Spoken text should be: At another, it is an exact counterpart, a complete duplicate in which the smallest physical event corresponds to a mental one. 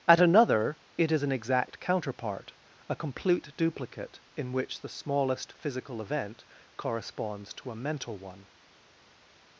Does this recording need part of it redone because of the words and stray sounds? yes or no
no